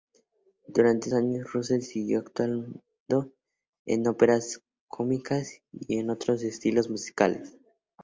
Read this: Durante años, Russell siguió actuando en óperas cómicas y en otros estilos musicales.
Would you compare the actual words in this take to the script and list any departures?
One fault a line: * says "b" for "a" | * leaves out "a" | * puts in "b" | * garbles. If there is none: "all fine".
all fine